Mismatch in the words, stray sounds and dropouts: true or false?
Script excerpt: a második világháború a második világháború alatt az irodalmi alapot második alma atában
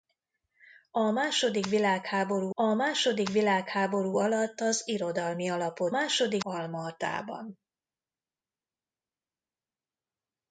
false